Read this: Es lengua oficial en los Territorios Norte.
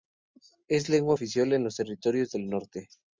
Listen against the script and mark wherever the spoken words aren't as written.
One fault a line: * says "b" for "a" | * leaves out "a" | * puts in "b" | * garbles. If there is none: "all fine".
* puts in "del"